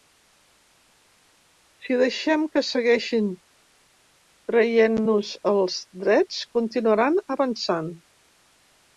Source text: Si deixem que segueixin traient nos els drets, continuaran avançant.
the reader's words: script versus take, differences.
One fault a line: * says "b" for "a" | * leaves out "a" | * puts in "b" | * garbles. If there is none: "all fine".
all fine